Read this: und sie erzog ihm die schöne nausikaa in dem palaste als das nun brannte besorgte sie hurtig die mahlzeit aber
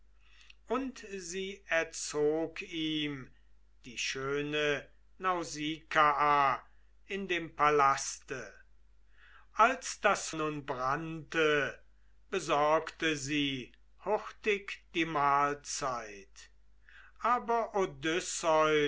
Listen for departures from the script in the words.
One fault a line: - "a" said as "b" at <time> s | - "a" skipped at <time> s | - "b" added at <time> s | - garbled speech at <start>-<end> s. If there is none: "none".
none